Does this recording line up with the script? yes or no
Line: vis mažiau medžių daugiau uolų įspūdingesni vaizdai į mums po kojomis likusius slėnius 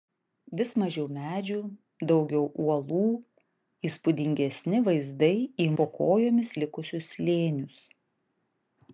no